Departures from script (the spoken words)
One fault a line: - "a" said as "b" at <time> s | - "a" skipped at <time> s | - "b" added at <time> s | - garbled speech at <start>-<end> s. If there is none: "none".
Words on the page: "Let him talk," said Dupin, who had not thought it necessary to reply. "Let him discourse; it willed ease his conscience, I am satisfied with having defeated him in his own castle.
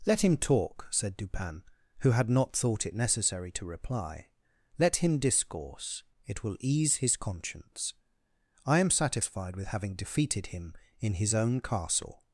- "willed" said as "will" at 6.4 s